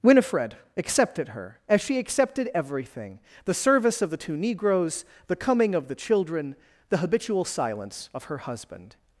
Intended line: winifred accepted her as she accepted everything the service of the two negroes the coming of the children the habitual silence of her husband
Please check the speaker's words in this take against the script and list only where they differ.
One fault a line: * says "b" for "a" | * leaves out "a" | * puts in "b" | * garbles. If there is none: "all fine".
all fine